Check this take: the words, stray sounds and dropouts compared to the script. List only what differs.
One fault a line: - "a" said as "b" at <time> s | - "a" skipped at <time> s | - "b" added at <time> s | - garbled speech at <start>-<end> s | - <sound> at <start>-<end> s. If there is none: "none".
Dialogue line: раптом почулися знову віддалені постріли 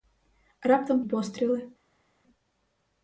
- "почулися знову віддалені" skipped at 1.0 s